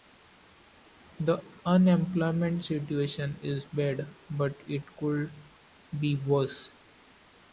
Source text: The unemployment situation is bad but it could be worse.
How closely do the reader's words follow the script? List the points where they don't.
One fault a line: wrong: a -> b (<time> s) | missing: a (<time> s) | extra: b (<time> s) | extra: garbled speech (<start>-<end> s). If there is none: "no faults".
no faults